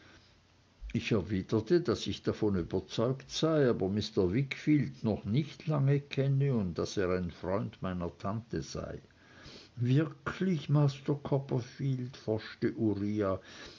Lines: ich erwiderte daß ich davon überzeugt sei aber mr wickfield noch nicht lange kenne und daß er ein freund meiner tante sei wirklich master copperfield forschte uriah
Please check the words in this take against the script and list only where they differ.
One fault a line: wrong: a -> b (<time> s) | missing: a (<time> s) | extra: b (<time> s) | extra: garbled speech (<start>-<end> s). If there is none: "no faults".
no faults